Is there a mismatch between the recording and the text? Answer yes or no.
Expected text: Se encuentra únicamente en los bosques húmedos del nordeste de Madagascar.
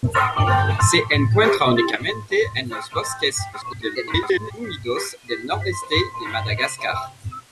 yes